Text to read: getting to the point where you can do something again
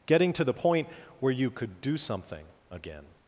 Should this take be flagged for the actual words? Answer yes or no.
yes